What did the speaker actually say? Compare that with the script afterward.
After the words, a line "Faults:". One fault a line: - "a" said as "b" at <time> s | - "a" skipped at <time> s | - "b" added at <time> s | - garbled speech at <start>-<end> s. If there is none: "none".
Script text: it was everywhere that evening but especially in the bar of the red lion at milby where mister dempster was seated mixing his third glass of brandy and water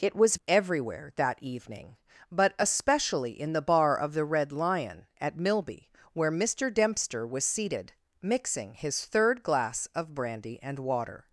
it was everywhere that evening but especially in the bar of the red lion at milby where mister dempster was seated mixing his third glass of brandy and water
Faults:
none